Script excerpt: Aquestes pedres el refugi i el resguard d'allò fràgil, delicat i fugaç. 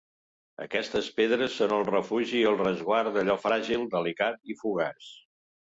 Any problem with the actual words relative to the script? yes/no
yes